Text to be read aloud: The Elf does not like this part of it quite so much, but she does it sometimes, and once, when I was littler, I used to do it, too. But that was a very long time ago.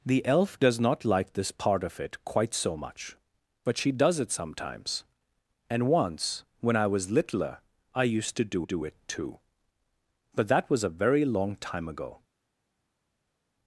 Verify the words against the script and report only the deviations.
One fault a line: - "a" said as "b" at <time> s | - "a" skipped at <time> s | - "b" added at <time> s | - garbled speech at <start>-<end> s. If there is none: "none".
- "do" added at 8.6 s